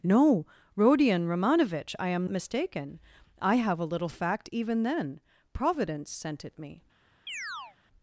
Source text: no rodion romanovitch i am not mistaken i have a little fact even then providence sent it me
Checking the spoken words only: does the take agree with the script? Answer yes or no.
no